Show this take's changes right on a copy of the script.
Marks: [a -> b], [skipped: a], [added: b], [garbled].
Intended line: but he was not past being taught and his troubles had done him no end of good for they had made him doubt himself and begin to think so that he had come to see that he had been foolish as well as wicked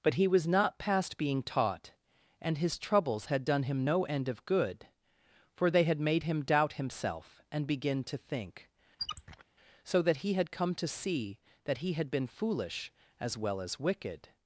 but he was not past being taught and his troubles had done him no end of good for they had made him doubt himself and begin to think so that he had come to see that he had been foolish as well as wicked